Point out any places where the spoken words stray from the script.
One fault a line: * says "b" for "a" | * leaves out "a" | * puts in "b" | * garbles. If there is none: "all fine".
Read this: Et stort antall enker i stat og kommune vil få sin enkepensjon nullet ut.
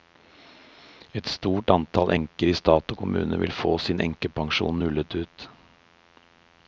all fine